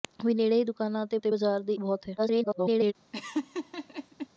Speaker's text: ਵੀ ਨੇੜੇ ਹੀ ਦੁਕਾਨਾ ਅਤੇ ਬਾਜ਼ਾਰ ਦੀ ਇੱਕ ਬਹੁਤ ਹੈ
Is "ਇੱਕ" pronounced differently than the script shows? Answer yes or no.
yes